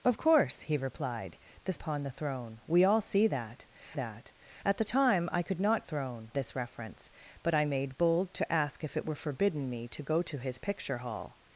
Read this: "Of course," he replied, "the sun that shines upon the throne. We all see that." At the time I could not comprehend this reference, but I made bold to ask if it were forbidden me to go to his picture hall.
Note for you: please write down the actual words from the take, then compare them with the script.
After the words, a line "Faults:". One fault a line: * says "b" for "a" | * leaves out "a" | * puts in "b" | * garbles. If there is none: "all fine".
"Of course," he replied, "the upon the throne. We all see that that." At the time I could not throne this reference, but I made bold to ask if it were forbidden me to go to his picture hall.
Faults:
* leaves out "sun that shines"
* puts in "that"
* says "throne" for "comprehend"